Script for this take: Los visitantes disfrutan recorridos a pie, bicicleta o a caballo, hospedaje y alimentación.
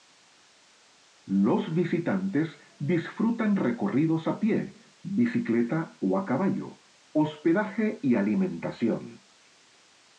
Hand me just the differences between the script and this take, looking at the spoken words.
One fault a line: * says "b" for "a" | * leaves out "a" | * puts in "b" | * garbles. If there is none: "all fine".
all fine